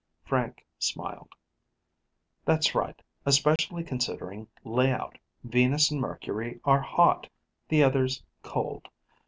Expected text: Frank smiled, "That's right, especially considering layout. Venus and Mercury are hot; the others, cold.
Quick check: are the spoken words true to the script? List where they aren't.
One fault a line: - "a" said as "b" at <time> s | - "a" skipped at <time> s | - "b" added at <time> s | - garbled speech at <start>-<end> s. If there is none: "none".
none